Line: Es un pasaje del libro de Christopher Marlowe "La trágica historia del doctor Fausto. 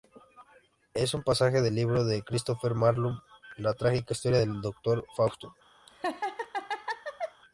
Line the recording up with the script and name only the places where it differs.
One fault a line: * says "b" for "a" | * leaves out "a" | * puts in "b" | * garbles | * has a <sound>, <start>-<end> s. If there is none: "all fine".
* has a laugh, 5.9-7.4 s